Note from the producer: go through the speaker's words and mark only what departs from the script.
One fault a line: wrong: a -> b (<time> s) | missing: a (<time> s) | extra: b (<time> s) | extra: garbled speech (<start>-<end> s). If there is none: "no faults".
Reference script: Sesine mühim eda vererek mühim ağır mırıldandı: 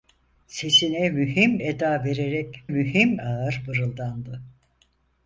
no faults